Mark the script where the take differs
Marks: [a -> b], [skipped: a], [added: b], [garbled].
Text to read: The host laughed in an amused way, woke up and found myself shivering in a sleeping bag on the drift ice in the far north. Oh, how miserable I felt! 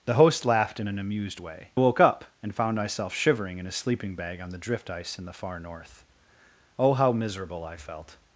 The host laughed in an amused way, woke up and found myself shivering in a sleeping bag on the drift ice in the far north. Oh, how miserable I felt!